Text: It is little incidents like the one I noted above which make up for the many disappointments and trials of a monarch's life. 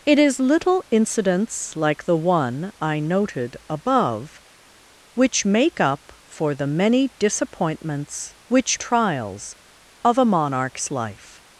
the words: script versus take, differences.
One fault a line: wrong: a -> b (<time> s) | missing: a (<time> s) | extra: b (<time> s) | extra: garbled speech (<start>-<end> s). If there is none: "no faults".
wrong: and -> which (8.5 s)